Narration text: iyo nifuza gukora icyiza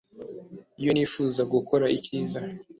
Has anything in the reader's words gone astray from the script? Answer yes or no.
no